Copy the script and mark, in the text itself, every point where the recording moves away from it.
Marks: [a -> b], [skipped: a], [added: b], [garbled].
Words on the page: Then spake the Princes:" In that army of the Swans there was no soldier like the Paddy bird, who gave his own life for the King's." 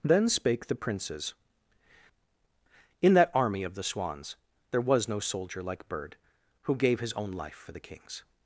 Then spake the Princes:" In that army of the Swans there was no soldier like [skipped: the Paddy] bird, who gave his own life for the King's."